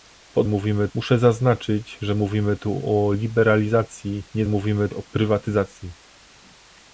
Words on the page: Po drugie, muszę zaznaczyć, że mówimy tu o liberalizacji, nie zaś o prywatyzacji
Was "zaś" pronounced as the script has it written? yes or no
no